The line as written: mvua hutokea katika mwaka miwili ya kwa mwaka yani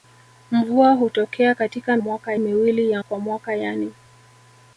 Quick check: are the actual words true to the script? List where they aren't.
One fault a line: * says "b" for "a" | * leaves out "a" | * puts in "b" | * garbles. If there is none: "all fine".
all fine